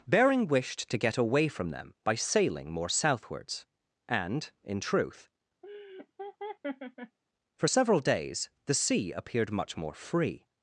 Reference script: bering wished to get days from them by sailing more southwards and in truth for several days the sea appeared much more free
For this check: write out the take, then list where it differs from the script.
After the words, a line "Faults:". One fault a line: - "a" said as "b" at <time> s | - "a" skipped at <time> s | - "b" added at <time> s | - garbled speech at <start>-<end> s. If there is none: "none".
bering wished to get away from them by sailing more southwards and in truth for several days the sea appeared much more free
Faults:
- "days" said as "away" at 1.2 s